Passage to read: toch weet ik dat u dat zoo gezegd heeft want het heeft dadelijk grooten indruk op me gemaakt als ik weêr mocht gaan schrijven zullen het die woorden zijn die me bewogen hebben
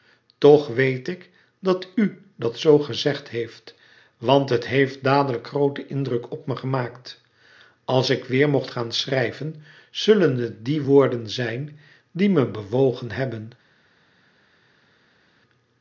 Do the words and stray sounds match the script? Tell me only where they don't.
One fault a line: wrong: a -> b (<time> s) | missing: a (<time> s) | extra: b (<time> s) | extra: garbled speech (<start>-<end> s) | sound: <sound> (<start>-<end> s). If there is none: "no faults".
no faults